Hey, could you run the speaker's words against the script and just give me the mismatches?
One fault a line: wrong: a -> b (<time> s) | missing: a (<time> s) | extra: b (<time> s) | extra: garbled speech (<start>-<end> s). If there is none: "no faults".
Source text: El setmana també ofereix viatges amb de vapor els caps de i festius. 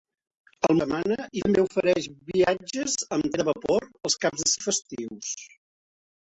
no faults